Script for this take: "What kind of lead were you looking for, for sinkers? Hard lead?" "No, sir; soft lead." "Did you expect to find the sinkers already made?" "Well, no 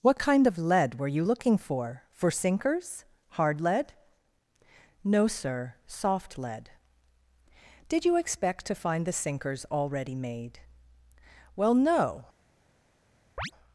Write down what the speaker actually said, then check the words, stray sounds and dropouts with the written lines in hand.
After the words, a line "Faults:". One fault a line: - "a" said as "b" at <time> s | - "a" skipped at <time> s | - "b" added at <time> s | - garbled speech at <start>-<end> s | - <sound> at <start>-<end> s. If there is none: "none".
"What kind of lead were you looking for, for sinkers? Hard lead?" "No, sir; soft lead." "Did you expect to find the sinkers already made?" "Well, no
Faults:
- chirp at 13.4-13.5 s